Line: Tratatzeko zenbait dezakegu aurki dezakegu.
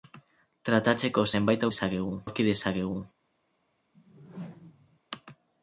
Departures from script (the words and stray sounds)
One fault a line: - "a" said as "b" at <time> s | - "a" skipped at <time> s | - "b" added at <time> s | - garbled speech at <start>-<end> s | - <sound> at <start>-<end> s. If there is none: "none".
- whoosh at 3.9-5.0 s